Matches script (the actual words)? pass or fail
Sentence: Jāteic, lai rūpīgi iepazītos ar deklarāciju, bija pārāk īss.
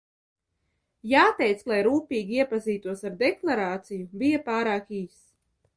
pass